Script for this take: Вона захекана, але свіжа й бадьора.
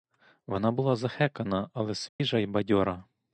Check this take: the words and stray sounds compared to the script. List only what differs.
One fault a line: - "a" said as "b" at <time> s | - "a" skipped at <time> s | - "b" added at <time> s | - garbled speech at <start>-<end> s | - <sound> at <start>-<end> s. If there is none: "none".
- "була" added at 0.7 s
- dropout at 2.1-2.2 s